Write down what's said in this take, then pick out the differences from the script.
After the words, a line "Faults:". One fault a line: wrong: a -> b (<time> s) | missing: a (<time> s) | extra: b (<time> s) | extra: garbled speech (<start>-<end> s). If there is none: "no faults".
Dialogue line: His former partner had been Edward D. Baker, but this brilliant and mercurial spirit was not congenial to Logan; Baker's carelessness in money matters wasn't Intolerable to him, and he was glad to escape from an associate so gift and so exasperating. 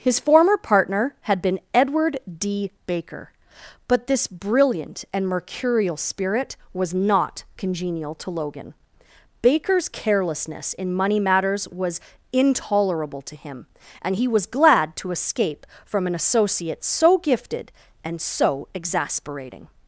His former partner had been Edward D. Baker, but this brilliant and mercurial spirit was not congenial to Logan; Baker's carelessness in money matters was Intolerable to him, and he was glad to escape from an associate so gifted and so exasperating.
Faults:
wrong: wasn't -> was (11.7 s)
wrong: gift -> gifted (17.2 s)